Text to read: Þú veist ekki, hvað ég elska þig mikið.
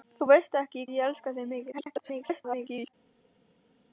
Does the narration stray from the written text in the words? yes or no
yes